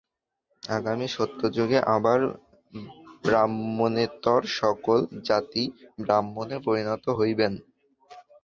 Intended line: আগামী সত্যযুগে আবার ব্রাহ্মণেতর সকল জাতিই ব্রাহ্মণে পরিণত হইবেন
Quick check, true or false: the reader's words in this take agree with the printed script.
true